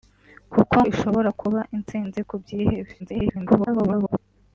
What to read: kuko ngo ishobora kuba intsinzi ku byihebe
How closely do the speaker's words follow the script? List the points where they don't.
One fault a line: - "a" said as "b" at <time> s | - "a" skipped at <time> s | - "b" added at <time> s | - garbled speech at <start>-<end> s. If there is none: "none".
- "ngo" skipped at 0.8 s
- garbled speech at 3.0-4.2 s